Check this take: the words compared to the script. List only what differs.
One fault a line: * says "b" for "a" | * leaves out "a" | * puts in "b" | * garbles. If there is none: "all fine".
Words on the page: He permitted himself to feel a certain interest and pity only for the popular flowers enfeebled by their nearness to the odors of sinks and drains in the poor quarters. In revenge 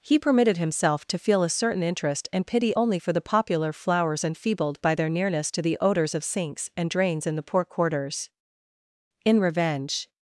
all fine